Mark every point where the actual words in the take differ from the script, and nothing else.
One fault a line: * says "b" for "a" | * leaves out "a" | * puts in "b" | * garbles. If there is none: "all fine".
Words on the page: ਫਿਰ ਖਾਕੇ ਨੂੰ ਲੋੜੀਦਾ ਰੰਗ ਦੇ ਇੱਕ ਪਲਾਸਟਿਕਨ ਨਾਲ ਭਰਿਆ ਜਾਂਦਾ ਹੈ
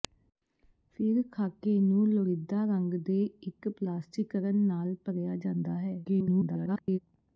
* garbles